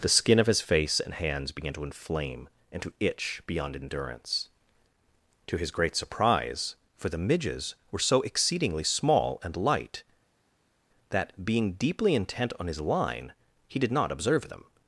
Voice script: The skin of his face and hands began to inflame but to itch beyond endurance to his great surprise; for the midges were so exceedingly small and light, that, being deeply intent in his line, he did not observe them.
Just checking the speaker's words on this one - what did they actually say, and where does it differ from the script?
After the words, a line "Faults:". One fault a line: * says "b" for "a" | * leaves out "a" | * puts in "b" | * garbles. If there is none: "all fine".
The skin of his face and hands began to inflame and to itch beyond endurance to his great surprise; for the midges were so exceedingly small and light, that, being deeply intent on his line, he did not observe them.
Faults:
* says "and" for "but"
* says "on" for "in"